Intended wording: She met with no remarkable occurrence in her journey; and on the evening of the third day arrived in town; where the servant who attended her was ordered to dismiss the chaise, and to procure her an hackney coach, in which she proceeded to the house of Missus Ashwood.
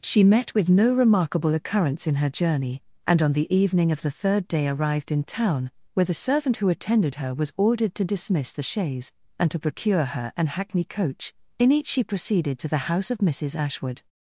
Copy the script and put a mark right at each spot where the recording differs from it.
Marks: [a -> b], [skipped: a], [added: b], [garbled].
She met with no remarkable occurrence in her journey; and on the evening of the third day arrived in town; where the servant who attended her was ordered to dismiss the chaise, and to procure her an hackney coach, in [which -> each] she proceeded to the house of Missus Ashwood.